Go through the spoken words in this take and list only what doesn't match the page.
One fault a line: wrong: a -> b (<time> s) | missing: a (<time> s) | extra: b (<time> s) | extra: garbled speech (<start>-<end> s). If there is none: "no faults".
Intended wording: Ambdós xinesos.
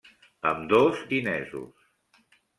no faults